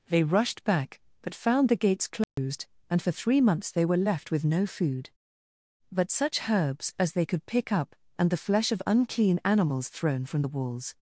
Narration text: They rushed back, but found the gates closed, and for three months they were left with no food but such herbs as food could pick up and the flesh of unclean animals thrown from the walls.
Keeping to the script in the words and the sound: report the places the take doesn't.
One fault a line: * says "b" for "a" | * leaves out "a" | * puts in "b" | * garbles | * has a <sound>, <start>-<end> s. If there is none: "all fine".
* has a dropout, 2.2-2.4 s
* says "they" for "food"